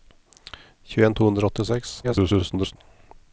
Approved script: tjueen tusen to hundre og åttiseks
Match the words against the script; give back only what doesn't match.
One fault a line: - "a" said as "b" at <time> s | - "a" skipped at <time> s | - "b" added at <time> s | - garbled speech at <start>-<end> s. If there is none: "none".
- "tusen" skipped at 1.2 s
- garbled speech at 2.0-2.8 s